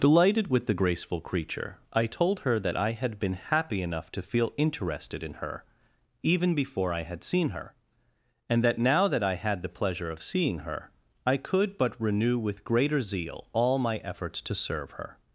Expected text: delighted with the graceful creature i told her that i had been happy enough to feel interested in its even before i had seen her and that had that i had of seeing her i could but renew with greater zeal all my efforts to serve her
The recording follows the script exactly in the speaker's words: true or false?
false